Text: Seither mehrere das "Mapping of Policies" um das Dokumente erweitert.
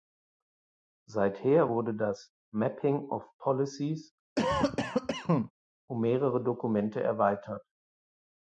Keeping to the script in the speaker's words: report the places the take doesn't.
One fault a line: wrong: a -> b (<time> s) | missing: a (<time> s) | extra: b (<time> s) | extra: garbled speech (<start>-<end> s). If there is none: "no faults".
wrong: mehrere -> wurde (1.7 s)
wrong: das -> mehrere (6.0 s)